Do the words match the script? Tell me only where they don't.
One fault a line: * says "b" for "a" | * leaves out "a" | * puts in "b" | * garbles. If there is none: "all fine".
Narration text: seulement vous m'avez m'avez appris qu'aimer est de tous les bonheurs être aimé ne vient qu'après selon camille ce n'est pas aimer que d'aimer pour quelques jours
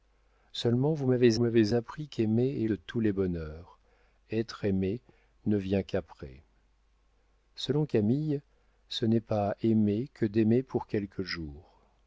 all fine